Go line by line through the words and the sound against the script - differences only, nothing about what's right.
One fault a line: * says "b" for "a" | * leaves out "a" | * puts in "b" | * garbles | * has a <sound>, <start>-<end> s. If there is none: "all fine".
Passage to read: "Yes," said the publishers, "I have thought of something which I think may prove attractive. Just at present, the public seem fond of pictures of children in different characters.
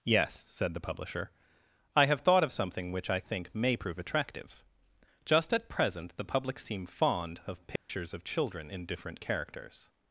* says "publisher" for "publishers"
* has a dropout, 7.8-7.9 s